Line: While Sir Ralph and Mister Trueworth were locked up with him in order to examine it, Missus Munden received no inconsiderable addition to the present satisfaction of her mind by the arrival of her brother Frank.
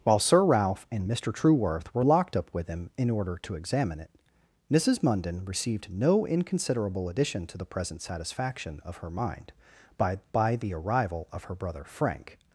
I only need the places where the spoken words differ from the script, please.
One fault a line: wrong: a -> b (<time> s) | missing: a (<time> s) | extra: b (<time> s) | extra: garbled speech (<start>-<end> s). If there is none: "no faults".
extra: by (10.3 s)